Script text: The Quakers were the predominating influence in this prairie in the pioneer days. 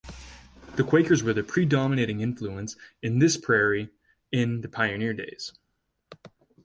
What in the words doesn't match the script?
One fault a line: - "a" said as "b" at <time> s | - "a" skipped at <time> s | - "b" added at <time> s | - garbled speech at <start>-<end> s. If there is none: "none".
none